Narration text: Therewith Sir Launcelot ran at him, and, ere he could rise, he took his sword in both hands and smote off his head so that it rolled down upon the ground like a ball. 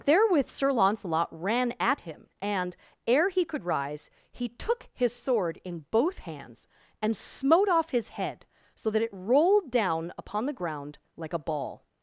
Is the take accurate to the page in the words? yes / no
yes